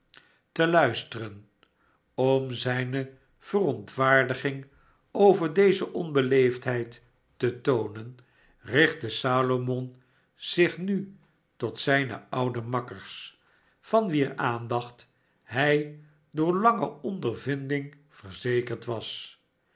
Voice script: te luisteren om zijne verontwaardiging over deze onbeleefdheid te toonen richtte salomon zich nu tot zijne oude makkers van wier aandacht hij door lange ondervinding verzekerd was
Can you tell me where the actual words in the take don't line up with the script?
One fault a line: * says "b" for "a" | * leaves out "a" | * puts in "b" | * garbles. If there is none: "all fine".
all fine